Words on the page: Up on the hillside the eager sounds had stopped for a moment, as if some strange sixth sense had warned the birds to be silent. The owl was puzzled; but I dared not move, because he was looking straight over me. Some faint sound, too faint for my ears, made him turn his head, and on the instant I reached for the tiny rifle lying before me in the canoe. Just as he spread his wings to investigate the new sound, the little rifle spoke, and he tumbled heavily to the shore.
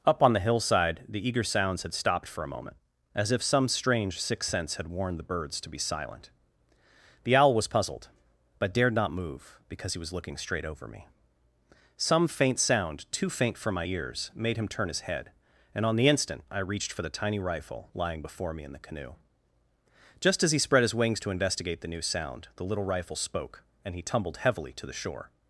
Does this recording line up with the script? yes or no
no